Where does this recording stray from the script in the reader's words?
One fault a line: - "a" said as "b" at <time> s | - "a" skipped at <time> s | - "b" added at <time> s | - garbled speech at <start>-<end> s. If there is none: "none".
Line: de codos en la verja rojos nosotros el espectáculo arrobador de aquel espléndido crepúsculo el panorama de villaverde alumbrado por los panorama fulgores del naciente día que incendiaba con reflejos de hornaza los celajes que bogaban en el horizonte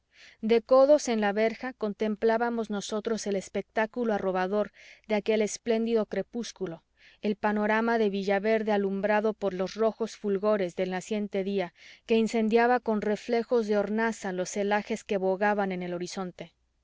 - "rojos" said as "contemplábamos" at 1.7 s
- "panorama" said as "rojos" at 9.8 s